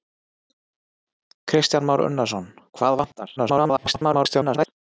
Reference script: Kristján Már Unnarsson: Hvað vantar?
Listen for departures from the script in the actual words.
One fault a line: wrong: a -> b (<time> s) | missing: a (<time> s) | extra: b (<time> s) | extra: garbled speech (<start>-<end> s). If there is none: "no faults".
extra: garbled speech (3.4-4.7 s)